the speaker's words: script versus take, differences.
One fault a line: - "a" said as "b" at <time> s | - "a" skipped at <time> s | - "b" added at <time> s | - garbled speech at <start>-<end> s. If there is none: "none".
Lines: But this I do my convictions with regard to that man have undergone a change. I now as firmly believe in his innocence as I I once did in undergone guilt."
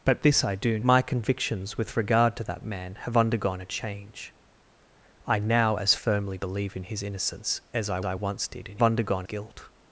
none